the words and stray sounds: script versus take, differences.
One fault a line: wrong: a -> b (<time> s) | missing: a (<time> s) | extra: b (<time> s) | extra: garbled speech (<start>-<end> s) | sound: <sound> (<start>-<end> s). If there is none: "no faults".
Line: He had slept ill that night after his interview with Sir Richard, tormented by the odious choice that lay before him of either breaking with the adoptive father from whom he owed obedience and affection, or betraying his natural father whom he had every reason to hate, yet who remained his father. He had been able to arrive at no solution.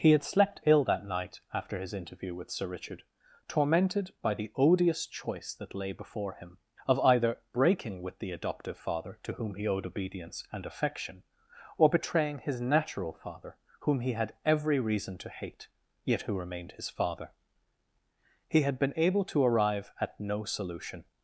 wrong: from -> to (9.2 s)